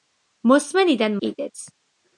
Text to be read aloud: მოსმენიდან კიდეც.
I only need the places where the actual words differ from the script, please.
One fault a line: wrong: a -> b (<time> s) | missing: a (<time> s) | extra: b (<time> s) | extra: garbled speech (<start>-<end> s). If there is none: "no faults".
no faults